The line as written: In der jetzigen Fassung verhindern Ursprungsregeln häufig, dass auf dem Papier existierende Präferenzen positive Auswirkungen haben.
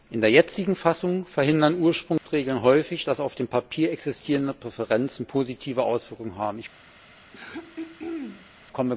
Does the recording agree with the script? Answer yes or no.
yes